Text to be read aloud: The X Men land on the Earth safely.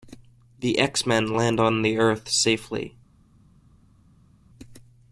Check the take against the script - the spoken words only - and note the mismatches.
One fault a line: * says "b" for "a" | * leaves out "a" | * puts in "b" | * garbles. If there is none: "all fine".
all fine